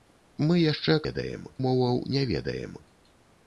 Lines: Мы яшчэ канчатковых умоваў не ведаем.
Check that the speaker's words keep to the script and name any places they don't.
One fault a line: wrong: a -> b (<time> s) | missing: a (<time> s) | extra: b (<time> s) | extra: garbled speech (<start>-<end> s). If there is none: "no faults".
wrong: канчатковых -> ведаем (1.1 s)